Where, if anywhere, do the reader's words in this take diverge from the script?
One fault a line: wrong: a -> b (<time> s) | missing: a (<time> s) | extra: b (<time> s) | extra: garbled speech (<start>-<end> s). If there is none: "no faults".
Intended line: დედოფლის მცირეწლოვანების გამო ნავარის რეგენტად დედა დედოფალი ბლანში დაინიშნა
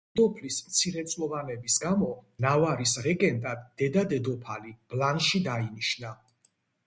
no faults